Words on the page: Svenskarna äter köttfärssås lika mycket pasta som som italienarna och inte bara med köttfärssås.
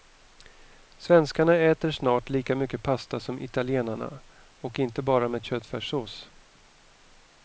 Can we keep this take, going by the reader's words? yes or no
no